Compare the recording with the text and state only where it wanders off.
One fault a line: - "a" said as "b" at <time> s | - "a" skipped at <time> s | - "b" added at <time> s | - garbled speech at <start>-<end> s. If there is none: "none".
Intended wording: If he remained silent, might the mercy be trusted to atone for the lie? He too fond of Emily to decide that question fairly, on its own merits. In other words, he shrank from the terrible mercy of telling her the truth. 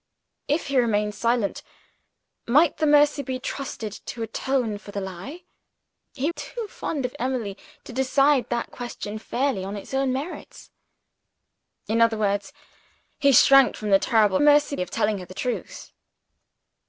none